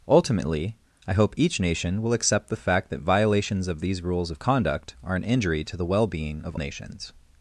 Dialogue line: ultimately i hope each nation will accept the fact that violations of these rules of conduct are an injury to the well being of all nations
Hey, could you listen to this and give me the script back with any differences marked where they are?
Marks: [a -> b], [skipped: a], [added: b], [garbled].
ultimately i hope each nation will accept the fact that violations of these rules of conduct are an injury to the well being of [skipped: all] nations